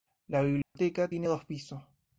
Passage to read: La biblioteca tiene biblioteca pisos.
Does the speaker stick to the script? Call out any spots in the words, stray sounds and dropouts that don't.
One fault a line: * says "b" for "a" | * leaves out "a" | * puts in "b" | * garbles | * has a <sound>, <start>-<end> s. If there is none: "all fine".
* has a dropout, 0.6-0.8 s
* says "dos" for "biblioteca"